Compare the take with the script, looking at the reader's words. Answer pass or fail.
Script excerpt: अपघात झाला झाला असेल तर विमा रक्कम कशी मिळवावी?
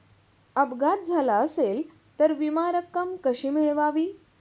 fail